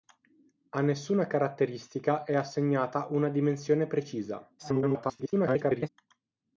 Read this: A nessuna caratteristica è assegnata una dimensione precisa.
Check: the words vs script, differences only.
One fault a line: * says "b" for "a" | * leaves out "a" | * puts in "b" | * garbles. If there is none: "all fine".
* garbles